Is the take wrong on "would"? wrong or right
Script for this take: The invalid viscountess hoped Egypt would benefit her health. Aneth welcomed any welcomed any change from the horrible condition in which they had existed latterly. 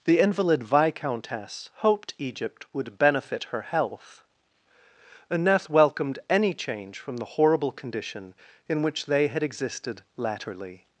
right